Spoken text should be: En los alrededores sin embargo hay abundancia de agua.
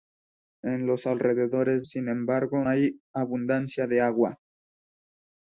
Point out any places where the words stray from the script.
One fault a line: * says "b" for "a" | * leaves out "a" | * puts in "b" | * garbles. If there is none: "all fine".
all fine